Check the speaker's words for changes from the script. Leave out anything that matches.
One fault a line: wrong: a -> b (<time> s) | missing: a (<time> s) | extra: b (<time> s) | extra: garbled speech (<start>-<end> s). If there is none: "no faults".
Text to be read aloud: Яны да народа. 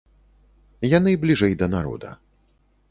extra: бліжэй (1.2 s)